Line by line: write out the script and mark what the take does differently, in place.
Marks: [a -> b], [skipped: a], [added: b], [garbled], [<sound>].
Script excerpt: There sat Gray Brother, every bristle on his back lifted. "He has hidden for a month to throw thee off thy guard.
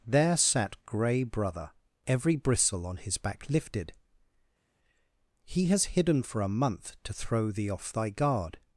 There sat Gray Brother, every bristle on his back lifted. "He has hidden for a month to throw thee off thy guard.